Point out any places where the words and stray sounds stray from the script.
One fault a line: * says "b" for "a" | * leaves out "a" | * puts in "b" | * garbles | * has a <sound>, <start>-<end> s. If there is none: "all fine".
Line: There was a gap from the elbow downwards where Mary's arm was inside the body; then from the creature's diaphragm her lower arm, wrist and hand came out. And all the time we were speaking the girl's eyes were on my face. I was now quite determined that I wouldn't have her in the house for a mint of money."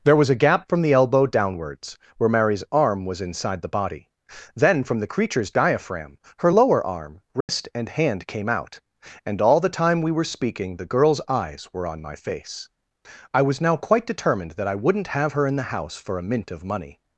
* has a dropout, 7.4-7.5 s